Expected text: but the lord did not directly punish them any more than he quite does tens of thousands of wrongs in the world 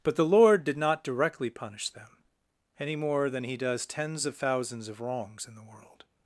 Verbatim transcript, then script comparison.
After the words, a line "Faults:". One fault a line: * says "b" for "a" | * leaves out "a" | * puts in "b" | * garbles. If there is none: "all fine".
but the lord did not directly punish them any more than he does tens of thousands of wrongs in the world
Faults:
* leaves out "quite"